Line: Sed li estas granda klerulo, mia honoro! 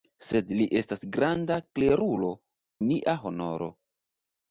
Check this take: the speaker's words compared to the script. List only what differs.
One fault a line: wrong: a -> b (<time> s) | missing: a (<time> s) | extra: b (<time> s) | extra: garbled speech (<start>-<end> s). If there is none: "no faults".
no faults